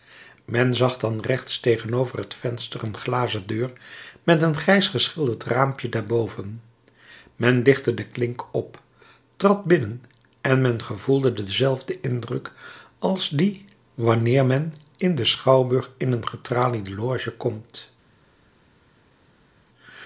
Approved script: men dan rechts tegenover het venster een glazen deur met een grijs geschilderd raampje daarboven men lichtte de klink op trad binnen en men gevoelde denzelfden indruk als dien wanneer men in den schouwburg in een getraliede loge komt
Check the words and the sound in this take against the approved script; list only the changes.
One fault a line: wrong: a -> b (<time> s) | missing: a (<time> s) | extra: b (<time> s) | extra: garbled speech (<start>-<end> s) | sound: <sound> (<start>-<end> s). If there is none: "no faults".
extra: zag (0.8 s)